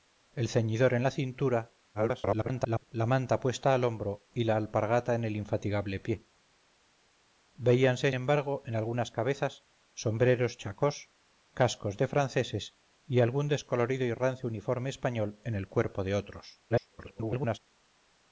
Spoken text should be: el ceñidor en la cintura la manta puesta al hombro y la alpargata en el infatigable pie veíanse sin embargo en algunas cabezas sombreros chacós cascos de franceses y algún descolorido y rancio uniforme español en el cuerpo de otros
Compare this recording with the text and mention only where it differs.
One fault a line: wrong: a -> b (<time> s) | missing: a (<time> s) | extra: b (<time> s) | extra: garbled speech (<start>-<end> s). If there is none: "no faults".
extra: garbled speech (1.9-2.8 s)
missing: sin (8.1 s)
extra: garbled speech (16.7-17.6 s)